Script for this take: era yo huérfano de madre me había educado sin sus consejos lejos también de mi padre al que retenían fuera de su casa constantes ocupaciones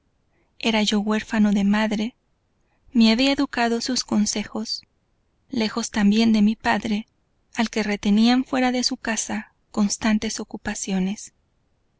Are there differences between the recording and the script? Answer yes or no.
yes